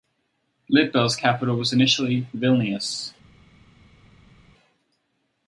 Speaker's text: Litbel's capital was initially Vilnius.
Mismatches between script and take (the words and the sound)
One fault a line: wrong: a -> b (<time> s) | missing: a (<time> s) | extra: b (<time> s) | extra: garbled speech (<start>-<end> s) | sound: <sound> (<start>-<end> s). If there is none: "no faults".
no faults